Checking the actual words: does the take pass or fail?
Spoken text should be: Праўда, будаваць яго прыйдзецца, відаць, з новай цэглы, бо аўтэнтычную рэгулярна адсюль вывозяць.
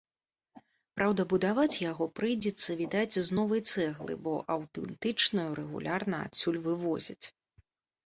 pass